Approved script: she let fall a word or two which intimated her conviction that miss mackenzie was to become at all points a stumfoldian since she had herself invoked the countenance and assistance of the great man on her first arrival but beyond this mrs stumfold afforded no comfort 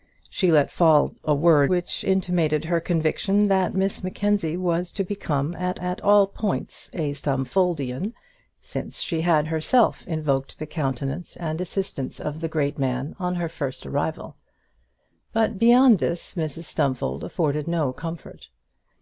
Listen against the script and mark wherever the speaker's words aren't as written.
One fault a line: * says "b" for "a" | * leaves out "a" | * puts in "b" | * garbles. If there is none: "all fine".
* leaves out "or two"
* puts in "at"